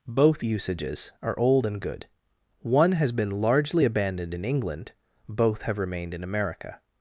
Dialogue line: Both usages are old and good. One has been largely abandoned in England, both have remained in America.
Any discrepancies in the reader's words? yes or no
no